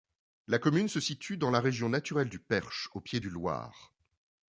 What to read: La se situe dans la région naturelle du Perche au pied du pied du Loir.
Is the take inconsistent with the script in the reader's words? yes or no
yes